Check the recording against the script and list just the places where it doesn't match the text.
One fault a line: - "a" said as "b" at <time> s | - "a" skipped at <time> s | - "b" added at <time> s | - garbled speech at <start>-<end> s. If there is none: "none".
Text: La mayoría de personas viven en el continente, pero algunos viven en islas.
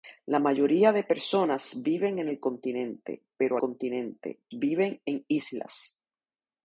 - "algunos" said as "continente" at 3.6 s